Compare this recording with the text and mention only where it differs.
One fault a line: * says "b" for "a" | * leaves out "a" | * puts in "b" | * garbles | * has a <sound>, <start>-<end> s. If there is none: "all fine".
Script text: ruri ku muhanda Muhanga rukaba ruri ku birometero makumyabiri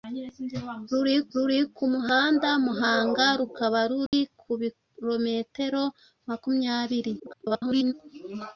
* puts in "ruri"
* has a dropout, 4.1-4.1 s
* garbles